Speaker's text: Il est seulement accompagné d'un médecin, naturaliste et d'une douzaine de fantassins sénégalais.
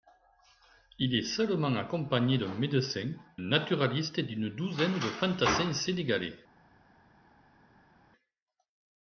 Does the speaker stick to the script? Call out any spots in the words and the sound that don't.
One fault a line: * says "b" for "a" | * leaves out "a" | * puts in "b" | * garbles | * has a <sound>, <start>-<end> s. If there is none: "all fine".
all fine